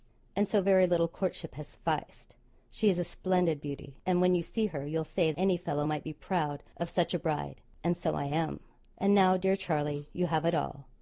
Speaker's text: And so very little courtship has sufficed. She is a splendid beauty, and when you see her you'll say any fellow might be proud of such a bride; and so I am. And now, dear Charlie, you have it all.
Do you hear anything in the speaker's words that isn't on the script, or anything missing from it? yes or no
no